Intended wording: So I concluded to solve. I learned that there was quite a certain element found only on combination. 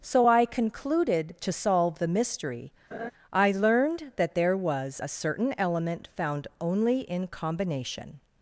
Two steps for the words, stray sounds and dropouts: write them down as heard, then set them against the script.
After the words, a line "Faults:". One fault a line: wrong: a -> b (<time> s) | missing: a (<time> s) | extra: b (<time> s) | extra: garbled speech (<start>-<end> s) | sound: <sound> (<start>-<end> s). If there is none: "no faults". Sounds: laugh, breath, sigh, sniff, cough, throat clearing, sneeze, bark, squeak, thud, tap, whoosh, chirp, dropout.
So I concluded to solve the mystery. I learned that there was a certain element found only in combination.
Faults:
extra: the mystery (2.0 s)
sound: laugh (2.9-3.1 s)
missing: quite (5.0 s)
wrong: on -> in (7.0 s)